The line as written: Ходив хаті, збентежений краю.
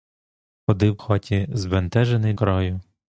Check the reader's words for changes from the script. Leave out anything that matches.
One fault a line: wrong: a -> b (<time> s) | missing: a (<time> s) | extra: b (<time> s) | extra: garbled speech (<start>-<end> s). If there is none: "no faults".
no faults